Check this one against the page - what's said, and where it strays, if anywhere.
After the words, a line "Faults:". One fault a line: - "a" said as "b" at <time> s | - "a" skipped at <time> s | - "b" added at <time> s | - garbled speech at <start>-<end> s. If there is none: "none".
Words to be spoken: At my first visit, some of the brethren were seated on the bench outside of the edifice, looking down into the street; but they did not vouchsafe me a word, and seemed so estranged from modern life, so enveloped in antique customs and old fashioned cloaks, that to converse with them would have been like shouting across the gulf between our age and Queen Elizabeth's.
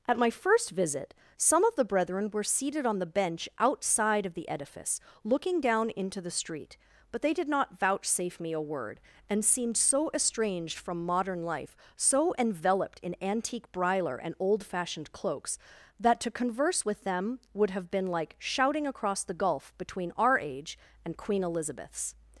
At my first visit, some of the brethren were seated on the bench outside of the edifice, looking down into the street; but they did not vouchsafe me a word, and seemed so estranged from modern life, so enveloped in antique briler and old fashioned cloaks, that to converse with them would have been like shouting across the gulf between our age and Queen Elizabeth's.
Faults:
- "customs" said as "briler" at 13.7 s